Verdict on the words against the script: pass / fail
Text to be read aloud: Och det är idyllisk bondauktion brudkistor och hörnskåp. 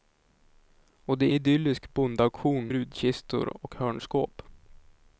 pass